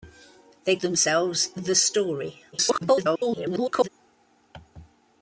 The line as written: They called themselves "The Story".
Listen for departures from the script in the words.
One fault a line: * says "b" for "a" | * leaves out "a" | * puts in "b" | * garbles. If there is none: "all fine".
* leaves out "called"
* garbles